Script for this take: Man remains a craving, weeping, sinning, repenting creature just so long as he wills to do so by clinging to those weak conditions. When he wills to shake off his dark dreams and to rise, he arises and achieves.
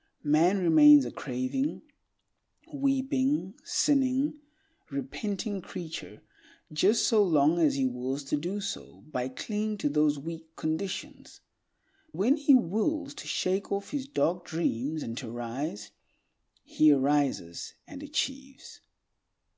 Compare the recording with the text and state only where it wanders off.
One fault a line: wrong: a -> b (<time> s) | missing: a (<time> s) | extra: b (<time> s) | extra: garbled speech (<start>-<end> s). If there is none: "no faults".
no faults